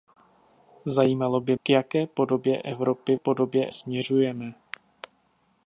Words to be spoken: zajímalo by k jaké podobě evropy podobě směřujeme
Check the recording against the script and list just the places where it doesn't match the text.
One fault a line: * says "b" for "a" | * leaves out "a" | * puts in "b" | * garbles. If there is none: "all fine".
all fine